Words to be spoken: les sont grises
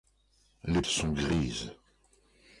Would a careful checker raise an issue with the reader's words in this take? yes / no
no